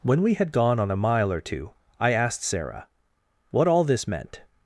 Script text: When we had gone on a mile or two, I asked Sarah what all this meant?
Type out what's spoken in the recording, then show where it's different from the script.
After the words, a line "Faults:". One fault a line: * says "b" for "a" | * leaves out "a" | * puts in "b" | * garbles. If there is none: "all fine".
When we had gone on a mile or two, I asked Sarah what all this meant?
Faults:
all fine